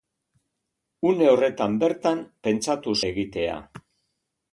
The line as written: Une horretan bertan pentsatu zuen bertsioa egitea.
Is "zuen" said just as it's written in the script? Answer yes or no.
no